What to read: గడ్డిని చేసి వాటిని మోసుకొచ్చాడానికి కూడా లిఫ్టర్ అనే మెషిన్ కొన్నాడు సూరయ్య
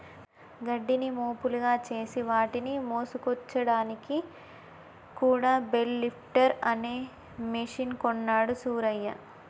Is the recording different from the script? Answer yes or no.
yes